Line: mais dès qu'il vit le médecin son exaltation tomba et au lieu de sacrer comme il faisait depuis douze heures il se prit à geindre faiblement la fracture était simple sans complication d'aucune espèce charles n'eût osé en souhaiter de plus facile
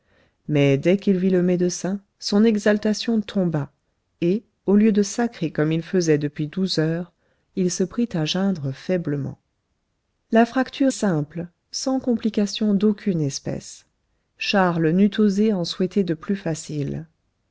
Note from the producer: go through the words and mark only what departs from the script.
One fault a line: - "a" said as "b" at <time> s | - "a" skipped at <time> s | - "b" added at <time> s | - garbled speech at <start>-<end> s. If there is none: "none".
- "était" skipped at 10.9 s